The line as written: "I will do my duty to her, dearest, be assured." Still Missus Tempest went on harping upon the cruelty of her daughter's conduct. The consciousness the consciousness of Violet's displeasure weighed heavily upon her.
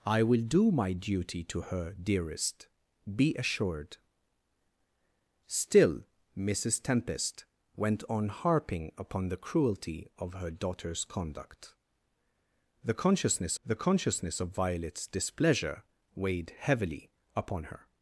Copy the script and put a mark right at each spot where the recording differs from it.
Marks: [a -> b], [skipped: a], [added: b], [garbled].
"I will do my duty to her, dearest, be assured." Still Missus Tempest went on harping upon the cruelty of her daughter's conduct. The consciousness the consciousness of Violet's displeasure weighed heavily upon her.